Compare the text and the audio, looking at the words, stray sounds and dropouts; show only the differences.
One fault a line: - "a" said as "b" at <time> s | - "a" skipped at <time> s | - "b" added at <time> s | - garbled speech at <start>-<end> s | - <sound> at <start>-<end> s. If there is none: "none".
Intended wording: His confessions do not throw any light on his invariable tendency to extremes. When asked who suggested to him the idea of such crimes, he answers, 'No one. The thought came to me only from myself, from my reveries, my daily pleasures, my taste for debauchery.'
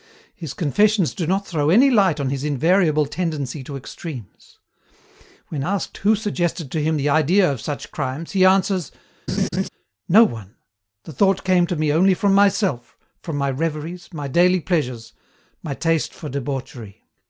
- laugh at 9.3-9.7 s